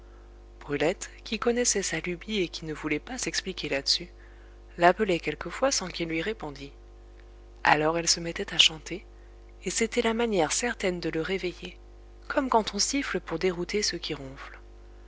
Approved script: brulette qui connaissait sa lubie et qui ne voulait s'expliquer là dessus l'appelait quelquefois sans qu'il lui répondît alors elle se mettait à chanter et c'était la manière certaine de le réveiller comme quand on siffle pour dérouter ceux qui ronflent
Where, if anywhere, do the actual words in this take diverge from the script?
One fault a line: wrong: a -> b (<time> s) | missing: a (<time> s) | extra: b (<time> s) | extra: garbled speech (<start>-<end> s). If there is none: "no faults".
extra: pas (3.0 s)